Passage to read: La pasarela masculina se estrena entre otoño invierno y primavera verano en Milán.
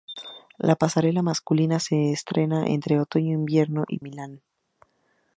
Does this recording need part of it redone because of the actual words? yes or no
yes